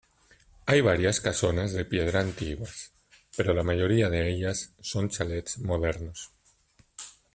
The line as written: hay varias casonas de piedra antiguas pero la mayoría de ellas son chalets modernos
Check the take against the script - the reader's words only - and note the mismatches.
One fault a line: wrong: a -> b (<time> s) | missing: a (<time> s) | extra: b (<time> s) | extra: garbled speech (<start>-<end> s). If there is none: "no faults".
no faults